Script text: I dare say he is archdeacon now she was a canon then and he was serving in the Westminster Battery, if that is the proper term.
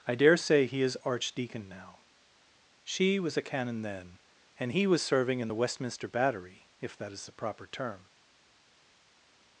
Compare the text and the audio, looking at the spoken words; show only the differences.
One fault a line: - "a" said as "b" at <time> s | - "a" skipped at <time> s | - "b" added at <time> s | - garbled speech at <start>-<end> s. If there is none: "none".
none